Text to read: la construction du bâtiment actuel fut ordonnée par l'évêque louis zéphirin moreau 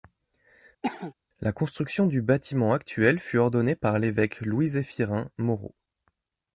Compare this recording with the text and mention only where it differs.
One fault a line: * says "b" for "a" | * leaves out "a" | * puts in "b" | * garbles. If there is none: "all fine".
all fine